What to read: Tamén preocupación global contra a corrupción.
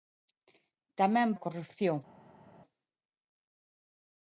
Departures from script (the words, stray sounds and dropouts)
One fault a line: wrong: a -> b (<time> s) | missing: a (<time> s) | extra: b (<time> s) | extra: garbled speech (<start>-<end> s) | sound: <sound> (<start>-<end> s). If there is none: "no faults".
missing: preocupación global contra (1.4 s)